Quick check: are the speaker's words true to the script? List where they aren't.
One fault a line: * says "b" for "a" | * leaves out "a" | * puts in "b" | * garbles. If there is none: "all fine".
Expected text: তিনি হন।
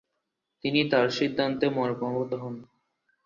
* puts in "তার সিদ্ধান্তে মর্মাহত"